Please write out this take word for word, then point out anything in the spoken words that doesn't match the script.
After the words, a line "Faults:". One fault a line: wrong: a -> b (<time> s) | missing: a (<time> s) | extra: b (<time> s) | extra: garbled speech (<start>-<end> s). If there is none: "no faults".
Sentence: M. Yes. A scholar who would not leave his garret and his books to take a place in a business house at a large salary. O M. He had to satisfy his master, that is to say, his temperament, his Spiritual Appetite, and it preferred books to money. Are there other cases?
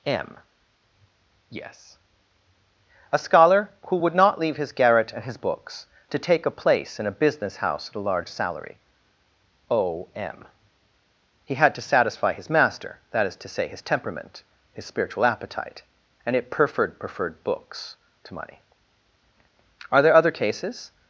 M. Yes. A scholar who would not leave his garret and his books to take a place in a business house at a large salary. O M. He had to satisfy his master, that is to say, his temperament, his Spiritual Appetite, and it preferred preferred books to money. Are there other cases?
Faults:
extra: preferred (17.0 s)